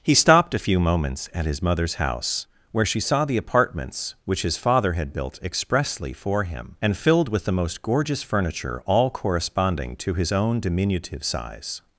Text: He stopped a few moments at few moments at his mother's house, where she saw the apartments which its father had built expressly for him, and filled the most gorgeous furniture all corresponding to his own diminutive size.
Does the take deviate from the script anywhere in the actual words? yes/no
yes